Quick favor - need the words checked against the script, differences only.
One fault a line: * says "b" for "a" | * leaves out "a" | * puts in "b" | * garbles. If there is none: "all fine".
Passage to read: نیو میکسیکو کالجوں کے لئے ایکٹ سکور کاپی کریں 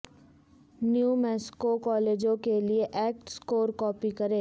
all fine